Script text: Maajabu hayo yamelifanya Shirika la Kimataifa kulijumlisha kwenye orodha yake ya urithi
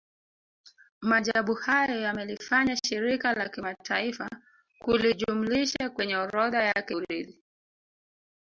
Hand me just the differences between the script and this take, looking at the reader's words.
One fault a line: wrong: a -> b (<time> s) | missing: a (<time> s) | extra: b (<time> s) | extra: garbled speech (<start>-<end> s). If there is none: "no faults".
missing: ya (7.0 s)